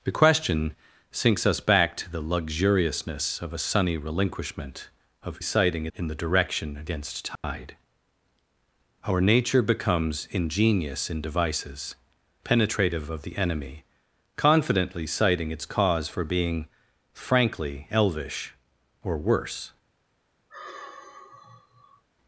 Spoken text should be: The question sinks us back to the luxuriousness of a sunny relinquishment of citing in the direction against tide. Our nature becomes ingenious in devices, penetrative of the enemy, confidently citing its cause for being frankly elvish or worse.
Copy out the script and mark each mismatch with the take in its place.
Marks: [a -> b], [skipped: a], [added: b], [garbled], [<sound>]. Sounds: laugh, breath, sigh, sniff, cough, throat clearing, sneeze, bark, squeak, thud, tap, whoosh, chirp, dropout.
The question sinks us back to the luxuriousness of a sunny relinquishment of citing in the direction against tide. [dropout] Our nature becomes ingenious in devices, penetrative of the enemy, confidently citing its cause for being frankly elvish or worse. [sigh]